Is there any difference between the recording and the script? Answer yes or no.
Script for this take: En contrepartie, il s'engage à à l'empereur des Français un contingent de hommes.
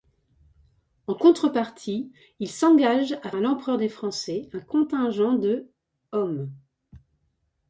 no